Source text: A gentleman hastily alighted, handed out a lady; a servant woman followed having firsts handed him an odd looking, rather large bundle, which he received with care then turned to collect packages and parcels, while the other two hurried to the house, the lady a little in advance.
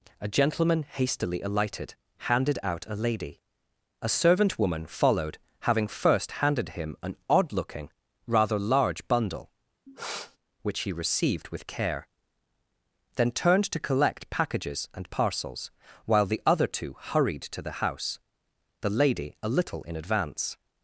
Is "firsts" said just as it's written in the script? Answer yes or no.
no